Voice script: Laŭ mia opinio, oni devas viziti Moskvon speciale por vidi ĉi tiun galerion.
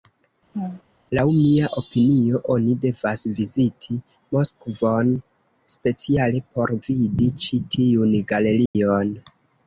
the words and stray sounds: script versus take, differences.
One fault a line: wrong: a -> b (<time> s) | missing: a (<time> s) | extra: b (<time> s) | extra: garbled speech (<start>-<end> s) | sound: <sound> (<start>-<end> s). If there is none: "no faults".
sound: laugh (0.5-0.8 s)
sound: dropout (8.7-8.8 s)